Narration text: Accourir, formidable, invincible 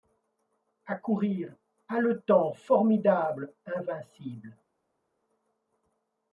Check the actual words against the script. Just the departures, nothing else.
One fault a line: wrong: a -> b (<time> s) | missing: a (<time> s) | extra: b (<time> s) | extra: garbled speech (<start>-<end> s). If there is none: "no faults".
extra: haletant (1.9 s)